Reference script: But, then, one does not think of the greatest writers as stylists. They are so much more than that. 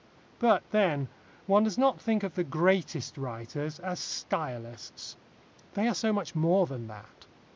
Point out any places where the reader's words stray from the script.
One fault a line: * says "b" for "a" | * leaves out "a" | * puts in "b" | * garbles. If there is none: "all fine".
all fine